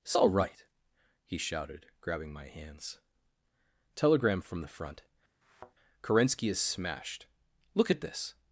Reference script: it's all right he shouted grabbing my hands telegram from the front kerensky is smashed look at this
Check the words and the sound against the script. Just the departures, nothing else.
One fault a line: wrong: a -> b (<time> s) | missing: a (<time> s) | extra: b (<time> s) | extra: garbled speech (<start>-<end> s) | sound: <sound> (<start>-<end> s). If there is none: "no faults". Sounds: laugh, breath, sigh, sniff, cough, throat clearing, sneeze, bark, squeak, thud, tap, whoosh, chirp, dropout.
sound: thud (5.4-5.8 s)